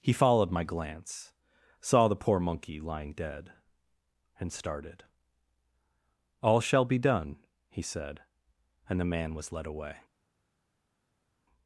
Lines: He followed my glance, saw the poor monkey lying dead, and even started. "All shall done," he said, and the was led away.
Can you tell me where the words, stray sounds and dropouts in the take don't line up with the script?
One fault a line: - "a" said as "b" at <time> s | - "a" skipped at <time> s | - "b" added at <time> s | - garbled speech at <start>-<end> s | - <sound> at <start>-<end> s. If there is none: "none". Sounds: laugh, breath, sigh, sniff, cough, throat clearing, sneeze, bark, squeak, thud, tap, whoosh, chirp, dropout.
- "even" skipped at 4.5 s
- "be" added at 6.8 s
- "man" added at 9.1 s